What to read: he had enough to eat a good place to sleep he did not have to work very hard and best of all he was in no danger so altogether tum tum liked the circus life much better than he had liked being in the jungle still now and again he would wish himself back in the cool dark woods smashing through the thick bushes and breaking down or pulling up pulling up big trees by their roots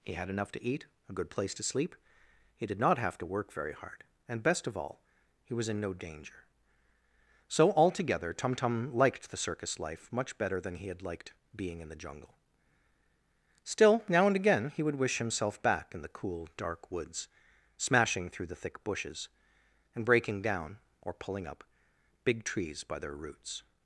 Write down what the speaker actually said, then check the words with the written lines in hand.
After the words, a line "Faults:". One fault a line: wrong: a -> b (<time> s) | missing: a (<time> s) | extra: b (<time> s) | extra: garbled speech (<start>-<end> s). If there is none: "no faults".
he had enough to eat a good place to sleep he did not have to work very hard and best of all he was in no danger so altogether tum tum liked the circus life much better than he had liked being in the jungle still now and again he would wish himself back in the cool dark woods smashing through the thick bushes and breaking down or pulling up big trees by their roots
Faults:
missing: pulling up (21.6 s)